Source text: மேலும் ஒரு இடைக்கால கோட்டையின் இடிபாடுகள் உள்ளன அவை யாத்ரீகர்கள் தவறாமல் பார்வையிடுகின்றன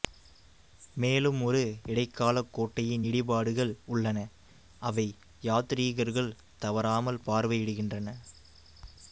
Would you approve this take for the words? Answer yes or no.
yes